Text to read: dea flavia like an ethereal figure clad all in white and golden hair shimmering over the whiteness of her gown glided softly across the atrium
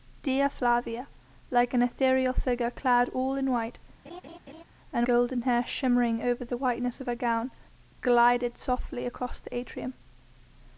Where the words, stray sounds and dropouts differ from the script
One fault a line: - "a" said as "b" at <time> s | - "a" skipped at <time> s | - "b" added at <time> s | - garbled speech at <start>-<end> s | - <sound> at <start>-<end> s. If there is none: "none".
- laugh at 4.0-4.6 s